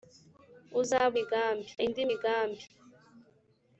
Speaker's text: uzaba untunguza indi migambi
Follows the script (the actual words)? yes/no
no